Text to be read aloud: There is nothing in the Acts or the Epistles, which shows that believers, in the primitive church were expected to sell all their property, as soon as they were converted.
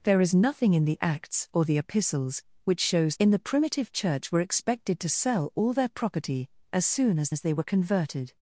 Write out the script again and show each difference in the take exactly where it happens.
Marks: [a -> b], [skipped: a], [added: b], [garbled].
There is nothing in the Acts or the Epistles, which shows [skipped: that believers,] in the primitive church were expected to sell all their property, as soon as [added: as] they were converted.